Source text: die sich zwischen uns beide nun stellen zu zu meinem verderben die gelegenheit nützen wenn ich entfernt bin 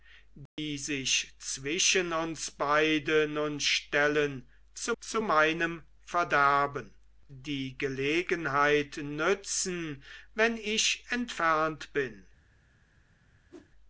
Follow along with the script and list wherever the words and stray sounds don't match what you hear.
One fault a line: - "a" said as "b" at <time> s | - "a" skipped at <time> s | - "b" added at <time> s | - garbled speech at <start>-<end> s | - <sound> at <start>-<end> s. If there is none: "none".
- dropout at 0.5-0.6 s
- whoosh at 13.5-13.7 s